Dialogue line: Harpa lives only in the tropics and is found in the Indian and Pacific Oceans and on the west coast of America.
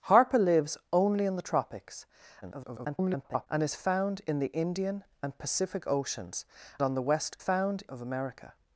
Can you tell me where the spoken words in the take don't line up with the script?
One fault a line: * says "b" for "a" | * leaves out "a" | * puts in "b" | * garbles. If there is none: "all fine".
* garbles
* leaves out "and"
* says "found" for "coast"